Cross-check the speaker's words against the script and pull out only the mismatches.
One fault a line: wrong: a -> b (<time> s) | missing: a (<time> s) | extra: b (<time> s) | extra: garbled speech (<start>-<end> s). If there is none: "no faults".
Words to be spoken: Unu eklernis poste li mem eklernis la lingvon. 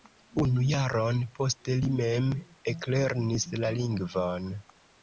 wrong: eklernis -> jaron (0.7 s)